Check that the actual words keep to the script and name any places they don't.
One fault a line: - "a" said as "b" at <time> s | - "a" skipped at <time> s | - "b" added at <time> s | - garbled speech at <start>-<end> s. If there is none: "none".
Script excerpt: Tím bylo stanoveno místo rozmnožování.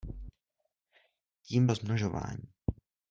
- "bylo stanoveno místo" skipped at 1.7 s